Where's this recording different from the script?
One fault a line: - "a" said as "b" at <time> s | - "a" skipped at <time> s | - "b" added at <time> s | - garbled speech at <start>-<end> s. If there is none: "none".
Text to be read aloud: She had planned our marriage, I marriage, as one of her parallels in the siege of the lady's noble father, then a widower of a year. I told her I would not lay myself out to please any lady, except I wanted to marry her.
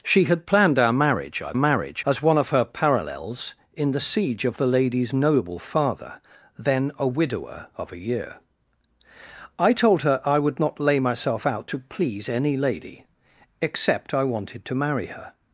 none